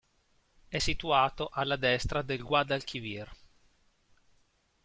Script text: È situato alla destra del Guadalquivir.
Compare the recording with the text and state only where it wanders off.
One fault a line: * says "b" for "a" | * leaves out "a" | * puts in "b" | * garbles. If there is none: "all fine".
all fine